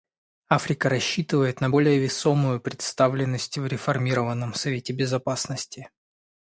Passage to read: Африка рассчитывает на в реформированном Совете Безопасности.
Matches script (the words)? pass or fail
fail